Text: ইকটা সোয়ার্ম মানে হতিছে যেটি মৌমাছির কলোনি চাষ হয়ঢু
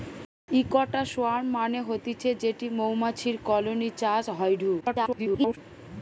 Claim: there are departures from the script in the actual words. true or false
true